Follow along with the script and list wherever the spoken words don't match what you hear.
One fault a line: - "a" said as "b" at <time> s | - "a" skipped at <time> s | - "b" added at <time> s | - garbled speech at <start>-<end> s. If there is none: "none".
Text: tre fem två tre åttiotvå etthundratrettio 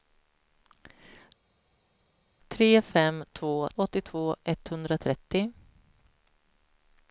- "tre" skipped at 3.7 s